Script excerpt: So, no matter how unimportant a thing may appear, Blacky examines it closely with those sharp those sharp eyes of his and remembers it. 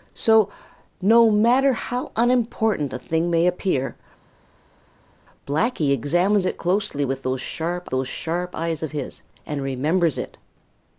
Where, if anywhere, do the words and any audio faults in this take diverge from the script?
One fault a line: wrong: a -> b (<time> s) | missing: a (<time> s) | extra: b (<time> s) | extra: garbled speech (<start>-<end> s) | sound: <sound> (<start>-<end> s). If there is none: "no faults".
no faults